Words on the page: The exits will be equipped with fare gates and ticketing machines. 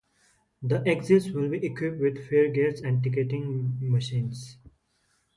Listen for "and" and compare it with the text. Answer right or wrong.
right